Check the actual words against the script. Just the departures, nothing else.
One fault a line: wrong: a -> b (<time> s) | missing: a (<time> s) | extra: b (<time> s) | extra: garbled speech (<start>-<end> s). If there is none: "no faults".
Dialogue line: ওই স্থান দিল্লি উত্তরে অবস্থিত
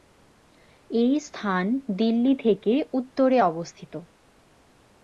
wrong: ওই -> এই (0.9 s)
extra: থেকে (2.4 s)